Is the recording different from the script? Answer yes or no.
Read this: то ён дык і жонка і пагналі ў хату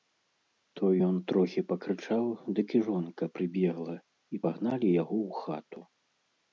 yes